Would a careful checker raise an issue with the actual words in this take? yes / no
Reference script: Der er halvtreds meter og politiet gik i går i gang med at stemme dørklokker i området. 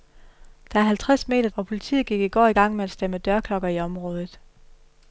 no